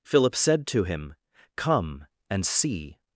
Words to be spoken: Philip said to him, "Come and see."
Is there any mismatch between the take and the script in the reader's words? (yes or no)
no